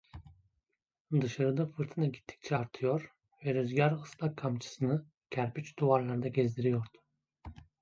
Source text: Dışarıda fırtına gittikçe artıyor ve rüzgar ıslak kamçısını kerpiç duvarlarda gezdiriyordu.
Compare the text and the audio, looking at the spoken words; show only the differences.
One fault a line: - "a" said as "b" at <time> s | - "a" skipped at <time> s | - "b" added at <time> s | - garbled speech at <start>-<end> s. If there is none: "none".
none